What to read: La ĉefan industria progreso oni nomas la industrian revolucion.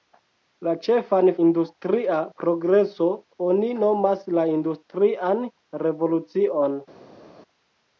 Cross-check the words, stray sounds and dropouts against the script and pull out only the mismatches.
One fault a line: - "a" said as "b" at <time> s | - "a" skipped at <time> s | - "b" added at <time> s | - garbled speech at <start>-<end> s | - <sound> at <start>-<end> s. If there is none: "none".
none